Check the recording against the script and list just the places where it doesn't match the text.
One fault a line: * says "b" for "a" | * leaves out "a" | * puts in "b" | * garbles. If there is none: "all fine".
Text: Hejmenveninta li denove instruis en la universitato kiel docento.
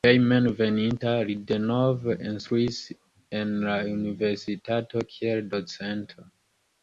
all fine